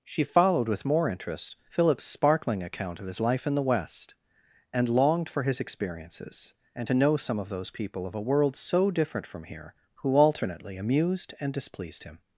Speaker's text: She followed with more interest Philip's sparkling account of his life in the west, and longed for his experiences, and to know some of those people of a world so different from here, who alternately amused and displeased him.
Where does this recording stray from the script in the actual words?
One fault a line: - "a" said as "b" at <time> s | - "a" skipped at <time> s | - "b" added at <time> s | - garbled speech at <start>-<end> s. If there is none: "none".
none